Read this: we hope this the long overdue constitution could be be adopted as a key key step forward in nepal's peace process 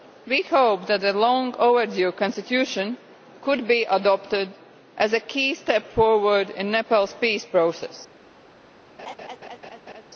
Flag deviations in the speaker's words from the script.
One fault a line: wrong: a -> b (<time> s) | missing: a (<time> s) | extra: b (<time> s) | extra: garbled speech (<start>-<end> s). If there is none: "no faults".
wrong: this -> that (0.9 s)
missing: be (3.8 s)
missing: key (5.5 s)